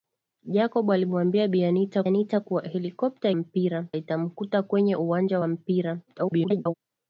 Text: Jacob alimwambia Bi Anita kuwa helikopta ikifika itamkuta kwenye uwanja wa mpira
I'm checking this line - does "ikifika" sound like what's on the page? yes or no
no